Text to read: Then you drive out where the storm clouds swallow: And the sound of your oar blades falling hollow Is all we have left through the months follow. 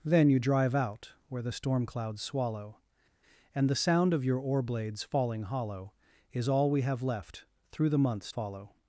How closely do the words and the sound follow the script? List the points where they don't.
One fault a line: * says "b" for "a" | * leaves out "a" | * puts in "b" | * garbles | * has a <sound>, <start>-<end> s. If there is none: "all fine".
all fine